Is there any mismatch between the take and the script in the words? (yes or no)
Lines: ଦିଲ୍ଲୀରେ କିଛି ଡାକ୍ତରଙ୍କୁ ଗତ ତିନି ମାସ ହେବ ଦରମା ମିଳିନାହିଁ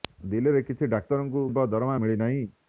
yes